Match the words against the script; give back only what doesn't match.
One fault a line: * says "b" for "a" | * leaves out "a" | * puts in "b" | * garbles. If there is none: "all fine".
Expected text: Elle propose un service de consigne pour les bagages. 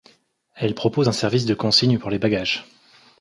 all fine